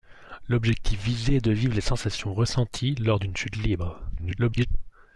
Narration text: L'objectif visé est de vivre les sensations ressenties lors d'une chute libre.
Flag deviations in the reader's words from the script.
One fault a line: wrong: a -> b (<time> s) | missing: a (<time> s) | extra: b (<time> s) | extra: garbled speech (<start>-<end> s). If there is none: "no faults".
extra: garbled speech (4.2-4.7 s)